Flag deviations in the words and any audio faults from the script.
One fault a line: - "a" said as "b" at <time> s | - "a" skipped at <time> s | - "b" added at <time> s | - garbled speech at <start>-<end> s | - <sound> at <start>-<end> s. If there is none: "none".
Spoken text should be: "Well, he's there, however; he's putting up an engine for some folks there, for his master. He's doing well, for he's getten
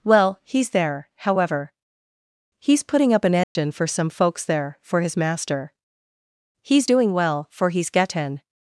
- dropout at 3.4-3.6 s